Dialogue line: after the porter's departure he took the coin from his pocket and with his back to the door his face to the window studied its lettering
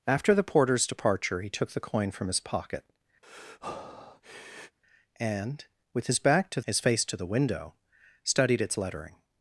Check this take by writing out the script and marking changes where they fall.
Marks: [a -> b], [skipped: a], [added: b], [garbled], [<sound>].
after the porter's departure he took the coin from his pocket [breath] and with his back to [skipped: the door] his face to the window studied its lettering